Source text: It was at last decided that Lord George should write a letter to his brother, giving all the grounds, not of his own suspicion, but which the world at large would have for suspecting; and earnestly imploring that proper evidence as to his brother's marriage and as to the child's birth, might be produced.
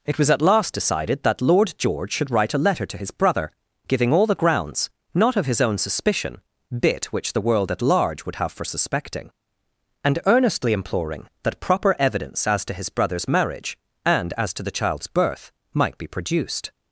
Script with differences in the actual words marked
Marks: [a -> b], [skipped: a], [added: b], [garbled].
It was at last decided that Lord George should write a letter to his brother, giving all the grounds, not of his own suspicion, [but -> bit] which the world at large would have for suspecting; and earnestly imploring that proper evidence as to his brother's marriage and as to the child's birth, might be produced.